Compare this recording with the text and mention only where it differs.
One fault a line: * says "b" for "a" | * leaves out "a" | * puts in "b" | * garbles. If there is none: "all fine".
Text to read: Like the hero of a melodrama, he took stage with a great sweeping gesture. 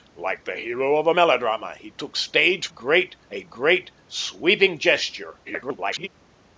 * says "great" for "with"
* garbles